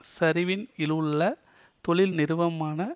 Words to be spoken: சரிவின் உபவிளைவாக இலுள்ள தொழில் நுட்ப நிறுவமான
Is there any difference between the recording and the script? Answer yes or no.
yes